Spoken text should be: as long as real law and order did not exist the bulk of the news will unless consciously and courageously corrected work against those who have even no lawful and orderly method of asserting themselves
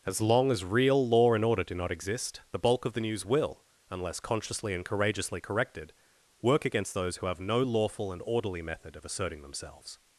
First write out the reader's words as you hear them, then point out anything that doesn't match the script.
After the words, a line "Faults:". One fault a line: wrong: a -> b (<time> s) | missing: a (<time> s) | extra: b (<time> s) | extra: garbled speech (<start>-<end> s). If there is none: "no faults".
as long as real law and order do not exist the bulk of the news will unless consciously and courageously corrected work against those who have no lawful and orderly method of asserting themselves
Faults:
wrong: did -> do (1.6 s)
missing: even (7.4 s)